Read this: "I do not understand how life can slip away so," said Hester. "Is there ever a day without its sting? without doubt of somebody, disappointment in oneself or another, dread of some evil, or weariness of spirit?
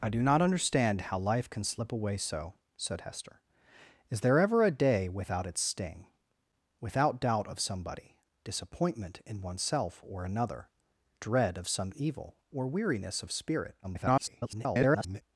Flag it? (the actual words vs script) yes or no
yes